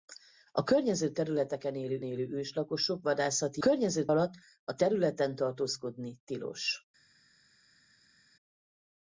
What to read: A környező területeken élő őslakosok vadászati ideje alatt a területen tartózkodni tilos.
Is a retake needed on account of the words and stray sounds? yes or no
yes